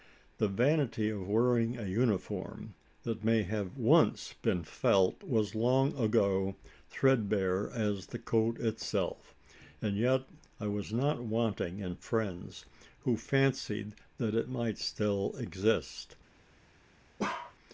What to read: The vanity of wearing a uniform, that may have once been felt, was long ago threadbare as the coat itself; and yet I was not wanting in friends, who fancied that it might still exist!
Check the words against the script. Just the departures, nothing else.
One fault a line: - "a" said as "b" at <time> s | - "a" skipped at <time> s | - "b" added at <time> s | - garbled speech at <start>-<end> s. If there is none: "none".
none